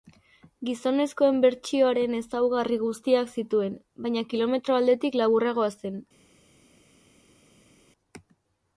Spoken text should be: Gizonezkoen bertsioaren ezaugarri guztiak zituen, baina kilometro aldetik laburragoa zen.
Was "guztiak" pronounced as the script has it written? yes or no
yes